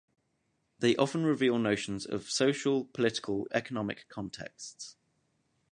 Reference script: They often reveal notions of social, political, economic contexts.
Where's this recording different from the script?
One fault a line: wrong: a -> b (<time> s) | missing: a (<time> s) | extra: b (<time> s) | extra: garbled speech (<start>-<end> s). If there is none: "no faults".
no faults